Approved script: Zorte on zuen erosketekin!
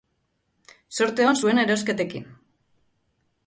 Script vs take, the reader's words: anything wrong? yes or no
no